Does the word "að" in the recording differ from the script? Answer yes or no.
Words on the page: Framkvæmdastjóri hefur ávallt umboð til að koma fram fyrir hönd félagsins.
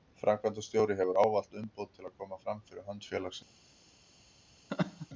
no